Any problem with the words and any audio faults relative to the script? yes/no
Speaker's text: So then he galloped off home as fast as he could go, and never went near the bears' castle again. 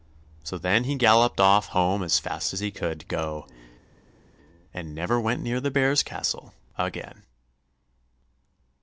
no